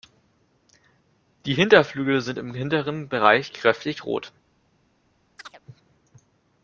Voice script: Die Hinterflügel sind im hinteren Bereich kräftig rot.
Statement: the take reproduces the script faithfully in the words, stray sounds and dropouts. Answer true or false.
false